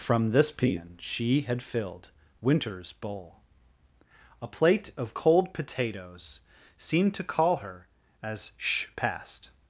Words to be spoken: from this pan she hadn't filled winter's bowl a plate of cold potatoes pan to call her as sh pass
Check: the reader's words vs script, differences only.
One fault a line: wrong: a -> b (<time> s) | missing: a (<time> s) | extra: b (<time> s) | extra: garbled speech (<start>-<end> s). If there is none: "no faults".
wrong: hadn't -> had (1.4 s)
wrong: pan -> seemed (6.8 s)
wrong: pass -> passed (9.0 s)